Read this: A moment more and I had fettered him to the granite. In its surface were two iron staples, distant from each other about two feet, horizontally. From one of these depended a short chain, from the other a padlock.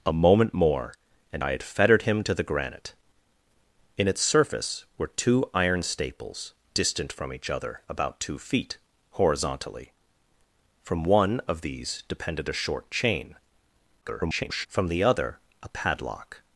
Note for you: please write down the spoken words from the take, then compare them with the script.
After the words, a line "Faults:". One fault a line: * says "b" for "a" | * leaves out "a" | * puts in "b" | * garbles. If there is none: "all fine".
A moment more and I had fettered him to the granite. In its surface were two iron staples, distant from each other about two feet, horizontally. From one of these depended a short chain, [garbled] from the other a padlock.
Faults:
* garbles